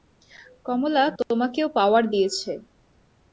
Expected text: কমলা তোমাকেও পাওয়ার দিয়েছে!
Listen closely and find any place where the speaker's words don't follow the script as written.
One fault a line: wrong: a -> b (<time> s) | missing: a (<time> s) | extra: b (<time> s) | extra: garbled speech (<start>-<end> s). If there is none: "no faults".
no faults